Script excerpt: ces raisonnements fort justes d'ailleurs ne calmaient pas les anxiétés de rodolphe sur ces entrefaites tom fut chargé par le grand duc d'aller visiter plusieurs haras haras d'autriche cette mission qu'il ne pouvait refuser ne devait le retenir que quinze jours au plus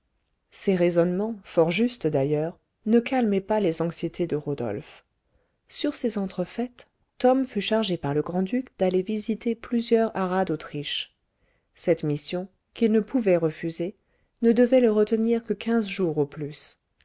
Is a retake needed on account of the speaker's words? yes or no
yes